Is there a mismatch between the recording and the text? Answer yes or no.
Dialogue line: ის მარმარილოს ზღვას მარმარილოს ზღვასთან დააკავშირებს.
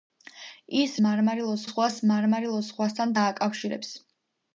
no